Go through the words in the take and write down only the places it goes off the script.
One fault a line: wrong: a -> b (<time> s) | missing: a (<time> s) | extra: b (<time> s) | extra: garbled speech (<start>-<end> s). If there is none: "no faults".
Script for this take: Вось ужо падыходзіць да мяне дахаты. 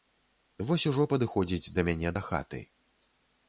no faults